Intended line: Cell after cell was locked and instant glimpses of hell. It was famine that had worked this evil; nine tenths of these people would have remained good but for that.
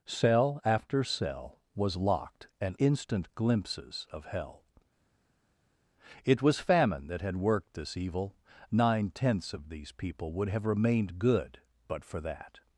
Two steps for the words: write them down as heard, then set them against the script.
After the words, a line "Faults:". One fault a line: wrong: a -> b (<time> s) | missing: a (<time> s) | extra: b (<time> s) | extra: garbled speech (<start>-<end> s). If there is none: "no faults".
Cell after cell was locked and instant glimpses of hell. It was famine that had worked this evil; nine tenths of these people would have remained good but for that.
Faults:
no faults